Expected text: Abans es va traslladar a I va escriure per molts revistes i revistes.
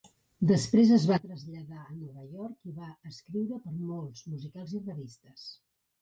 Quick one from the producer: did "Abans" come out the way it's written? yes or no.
no